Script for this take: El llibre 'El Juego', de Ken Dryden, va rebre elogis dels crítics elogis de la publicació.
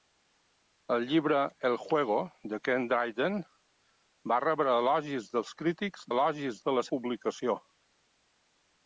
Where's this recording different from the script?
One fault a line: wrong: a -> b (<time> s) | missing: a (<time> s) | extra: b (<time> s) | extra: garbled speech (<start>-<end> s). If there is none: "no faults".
no faults